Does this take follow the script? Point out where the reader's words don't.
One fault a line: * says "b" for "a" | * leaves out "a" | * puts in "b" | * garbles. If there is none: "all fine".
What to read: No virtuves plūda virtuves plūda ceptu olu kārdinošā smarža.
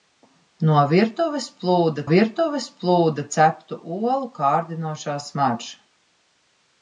all fine